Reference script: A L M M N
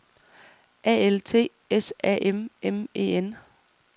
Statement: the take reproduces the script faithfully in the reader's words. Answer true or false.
false